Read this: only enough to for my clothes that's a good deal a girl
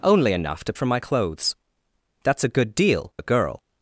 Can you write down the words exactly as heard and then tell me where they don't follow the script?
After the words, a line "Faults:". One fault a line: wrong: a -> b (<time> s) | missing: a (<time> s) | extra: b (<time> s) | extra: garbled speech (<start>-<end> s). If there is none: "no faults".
only enough to for my clothes that's a good deal a girl
Faults:
no faults